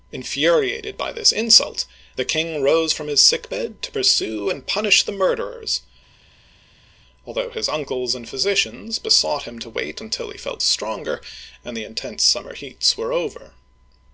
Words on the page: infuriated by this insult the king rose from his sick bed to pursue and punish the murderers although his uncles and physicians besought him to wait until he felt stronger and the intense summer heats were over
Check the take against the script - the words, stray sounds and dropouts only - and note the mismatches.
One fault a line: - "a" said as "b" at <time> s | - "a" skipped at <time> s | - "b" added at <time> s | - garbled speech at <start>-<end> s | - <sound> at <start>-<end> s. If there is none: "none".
none